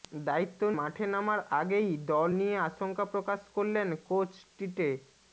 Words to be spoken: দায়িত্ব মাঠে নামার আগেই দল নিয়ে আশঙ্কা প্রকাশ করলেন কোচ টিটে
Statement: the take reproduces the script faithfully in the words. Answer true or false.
true